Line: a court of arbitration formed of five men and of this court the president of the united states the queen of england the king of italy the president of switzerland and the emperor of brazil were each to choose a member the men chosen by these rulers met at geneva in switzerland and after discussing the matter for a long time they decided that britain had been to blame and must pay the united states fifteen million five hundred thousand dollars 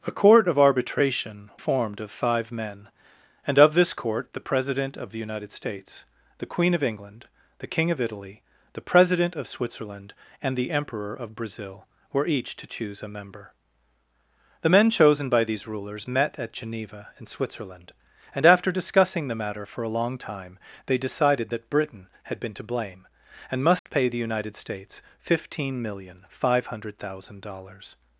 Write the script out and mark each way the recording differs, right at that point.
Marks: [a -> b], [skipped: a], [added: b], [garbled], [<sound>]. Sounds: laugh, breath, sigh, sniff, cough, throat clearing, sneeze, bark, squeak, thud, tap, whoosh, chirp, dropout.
a court of arbitration formed of five men and of this court the president of the united states the queen of england the king of italy the president of switzerland and the emperor of brazil were each to choose a member the men chosen by these rulers met at geneva in switzerland and after discussing the matter for a long time they decided that britain had been to blame and must [dropout] pay the united states fifteen million five hundred thousand dollars